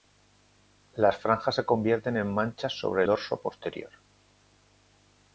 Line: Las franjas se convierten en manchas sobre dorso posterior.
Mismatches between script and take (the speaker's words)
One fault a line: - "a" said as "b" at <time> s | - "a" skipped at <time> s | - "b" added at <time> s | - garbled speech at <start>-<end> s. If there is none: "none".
none